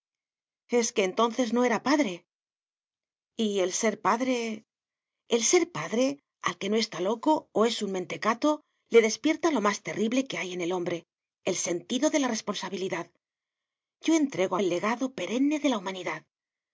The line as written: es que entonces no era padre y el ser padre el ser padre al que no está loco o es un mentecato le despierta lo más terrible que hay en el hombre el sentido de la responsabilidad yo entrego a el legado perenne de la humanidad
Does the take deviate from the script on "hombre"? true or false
false